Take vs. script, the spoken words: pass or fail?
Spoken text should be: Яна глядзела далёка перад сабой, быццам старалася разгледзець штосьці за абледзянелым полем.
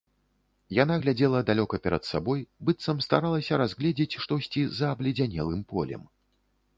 pass